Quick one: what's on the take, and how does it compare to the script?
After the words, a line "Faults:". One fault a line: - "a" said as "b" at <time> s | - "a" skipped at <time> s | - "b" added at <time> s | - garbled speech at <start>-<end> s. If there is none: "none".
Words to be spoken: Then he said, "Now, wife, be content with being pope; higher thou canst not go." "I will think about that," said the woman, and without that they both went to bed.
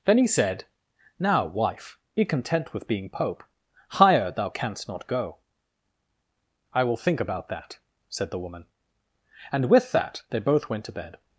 Then he said, "Now, wife, be content with being pope; higher thou canst not go." "I will think about that," said the woman, and with that they both went to bed.
Faults:
- "without" said as "with" at 9.7 s